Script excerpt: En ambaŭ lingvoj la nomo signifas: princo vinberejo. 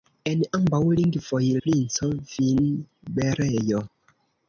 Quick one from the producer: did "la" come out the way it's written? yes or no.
no